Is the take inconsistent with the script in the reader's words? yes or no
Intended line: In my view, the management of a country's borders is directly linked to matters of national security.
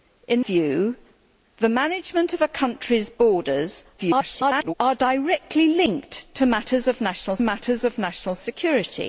yes